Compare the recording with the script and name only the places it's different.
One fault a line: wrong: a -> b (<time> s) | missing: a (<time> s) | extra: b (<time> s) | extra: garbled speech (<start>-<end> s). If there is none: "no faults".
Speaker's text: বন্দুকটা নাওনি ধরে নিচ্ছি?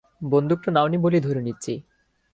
extra: বলেই (1.0 s)